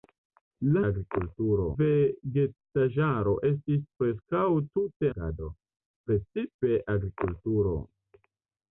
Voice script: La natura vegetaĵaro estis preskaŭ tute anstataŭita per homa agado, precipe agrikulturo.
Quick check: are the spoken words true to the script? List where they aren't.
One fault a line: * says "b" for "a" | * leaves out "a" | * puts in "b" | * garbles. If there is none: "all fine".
* says "agrikulturo" for "natura"
* leaves out "anstataŭita per homa"